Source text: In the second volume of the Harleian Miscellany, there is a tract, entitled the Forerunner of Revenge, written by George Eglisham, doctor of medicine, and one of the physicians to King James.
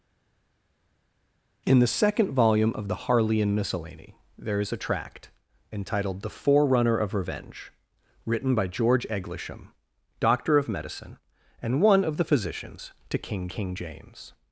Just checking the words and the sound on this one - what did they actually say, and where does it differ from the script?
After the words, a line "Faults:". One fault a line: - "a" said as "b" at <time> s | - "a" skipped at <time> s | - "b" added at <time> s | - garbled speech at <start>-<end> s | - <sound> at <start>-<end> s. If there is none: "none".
In the second volume of the Harleian Miscellany, there is a tract, entitled the Forerunner of Revenge, written by George Eglisham, doctor of medicine, and one of the physicians to King King James.
Faults:
- "King" added at 13.5 s